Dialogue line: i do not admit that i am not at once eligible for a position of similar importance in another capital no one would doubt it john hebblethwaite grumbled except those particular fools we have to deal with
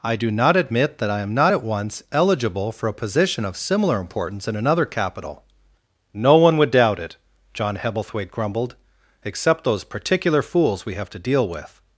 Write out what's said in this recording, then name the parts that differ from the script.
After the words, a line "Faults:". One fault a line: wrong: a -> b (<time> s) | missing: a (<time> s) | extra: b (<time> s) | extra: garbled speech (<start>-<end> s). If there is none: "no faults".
i do not admit that i am not at once eligible for a position of similar importance in another capital no one would doubt it john hebblethwaite grumbled except those particular fools we have to deal with
Faults:
no faults